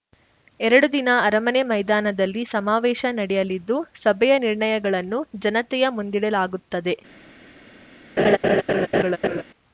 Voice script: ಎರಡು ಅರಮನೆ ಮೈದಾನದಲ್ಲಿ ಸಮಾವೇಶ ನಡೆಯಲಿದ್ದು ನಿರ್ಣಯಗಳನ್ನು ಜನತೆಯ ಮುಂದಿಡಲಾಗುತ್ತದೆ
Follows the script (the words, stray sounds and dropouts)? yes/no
no